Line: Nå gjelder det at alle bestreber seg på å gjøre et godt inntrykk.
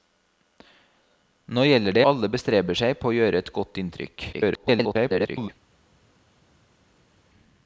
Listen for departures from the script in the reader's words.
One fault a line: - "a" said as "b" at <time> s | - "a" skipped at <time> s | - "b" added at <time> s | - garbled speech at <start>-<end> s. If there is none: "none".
- "at" skipped at 2.0 s
- garbled speech at 4.3-5.5 s